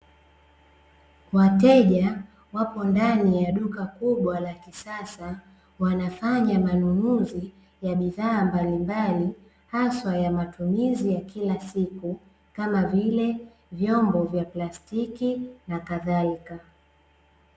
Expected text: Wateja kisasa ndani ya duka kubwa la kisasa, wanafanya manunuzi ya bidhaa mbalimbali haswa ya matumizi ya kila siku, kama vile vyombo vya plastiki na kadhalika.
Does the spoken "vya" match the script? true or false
true